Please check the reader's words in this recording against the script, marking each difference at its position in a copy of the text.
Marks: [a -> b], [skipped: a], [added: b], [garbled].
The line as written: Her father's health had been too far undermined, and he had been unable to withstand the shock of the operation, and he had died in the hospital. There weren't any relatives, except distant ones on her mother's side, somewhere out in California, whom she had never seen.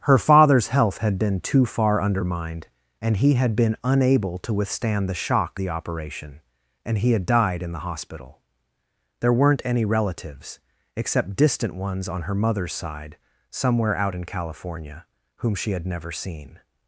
Her father's health had been too far undermined, and he had been unable to withstand the shock [skipped: of] the operation, and he had died in the hospital. There weren't any relatives, except distant ones on her mother's side, somewhere out in California, whom she had never seen.